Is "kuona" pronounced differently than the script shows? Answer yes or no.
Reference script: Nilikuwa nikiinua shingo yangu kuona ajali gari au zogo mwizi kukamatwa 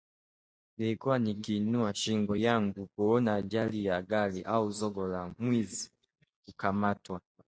no